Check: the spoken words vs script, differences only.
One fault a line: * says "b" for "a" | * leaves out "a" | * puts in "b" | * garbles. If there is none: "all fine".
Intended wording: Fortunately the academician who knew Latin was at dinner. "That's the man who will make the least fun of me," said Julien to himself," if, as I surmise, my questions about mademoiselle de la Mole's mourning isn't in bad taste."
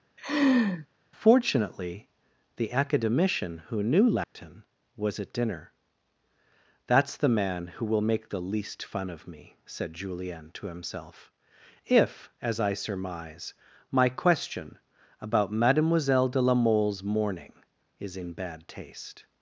* says "question" for "questions"
* says "is" for "isn't"